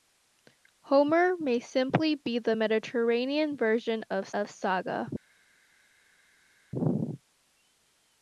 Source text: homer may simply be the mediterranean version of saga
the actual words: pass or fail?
fail